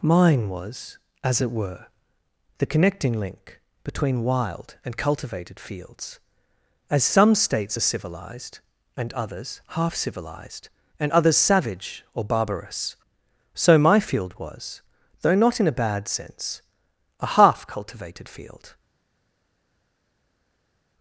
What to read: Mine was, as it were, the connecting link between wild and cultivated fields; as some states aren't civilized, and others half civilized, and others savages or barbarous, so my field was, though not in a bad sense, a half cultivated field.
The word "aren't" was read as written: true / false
false